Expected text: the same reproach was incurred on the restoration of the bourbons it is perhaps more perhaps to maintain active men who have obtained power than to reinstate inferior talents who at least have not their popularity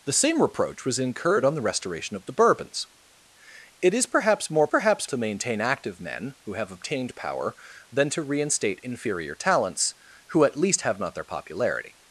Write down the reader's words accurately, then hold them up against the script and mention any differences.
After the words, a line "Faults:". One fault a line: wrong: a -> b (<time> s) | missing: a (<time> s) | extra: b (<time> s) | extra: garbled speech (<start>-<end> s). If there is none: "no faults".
the same reproach was incurred on the restoration of the bourbons it is perhaps more perhaps to maintain active men who have obtained power than to reinstate inferior talents who at least have not their popularity
Faults:
no faults